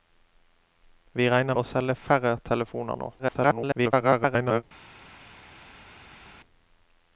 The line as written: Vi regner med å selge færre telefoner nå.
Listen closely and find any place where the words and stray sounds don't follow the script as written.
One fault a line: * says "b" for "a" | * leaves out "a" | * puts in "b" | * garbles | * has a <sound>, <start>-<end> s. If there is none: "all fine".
* leaves out "med"
* garbles